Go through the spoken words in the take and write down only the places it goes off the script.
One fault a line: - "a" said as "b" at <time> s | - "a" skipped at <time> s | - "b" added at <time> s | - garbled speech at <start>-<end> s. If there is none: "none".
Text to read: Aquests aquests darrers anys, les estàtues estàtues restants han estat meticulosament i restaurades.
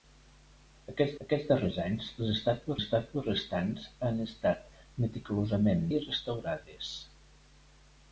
none